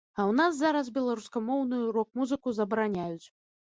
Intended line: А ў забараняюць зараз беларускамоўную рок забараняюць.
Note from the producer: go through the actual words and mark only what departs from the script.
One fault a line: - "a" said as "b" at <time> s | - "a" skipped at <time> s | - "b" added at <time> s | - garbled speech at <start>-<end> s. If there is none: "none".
- "забараняюць" said as "нас" at 0.4 s
- "музыку" added at 2.2 s